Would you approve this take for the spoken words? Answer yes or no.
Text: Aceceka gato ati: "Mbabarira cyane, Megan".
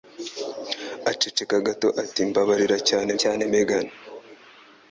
no